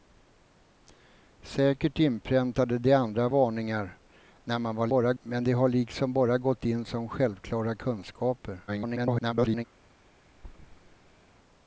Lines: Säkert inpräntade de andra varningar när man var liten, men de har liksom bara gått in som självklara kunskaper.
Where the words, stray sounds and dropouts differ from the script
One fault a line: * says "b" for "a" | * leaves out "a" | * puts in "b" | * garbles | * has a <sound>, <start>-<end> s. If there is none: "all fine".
* says "bara" for "liten"
* garbles
* has a thud, 10.3-11.3 s